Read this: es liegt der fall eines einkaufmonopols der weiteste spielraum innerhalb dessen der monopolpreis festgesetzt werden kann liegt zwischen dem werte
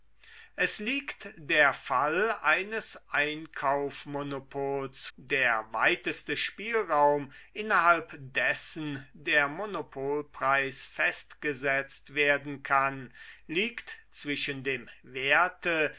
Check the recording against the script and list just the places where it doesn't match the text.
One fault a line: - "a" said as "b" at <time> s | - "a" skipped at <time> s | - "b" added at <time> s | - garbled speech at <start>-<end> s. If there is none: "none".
none